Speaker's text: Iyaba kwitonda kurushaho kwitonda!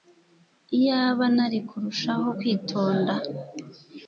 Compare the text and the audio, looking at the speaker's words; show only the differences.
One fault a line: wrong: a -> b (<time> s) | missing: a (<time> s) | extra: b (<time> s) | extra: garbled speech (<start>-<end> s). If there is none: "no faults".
wrong: kwitonda -> nari (1.4 s)